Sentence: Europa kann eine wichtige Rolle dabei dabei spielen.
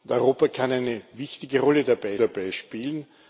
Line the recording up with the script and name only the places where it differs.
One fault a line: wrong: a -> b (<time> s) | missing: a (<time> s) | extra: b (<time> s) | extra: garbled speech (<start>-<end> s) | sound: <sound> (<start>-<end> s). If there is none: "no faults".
no faults